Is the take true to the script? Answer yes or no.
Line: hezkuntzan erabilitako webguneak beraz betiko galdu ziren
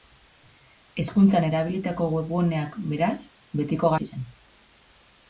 no